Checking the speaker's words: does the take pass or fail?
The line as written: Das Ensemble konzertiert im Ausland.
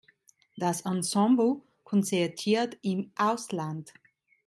pass